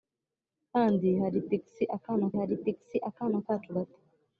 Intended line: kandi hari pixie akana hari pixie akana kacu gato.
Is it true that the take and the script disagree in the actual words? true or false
false